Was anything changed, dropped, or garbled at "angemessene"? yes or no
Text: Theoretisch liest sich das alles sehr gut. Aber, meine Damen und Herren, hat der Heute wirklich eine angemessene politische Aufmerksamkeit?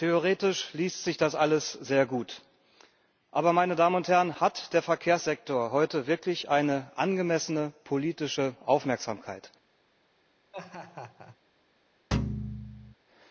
no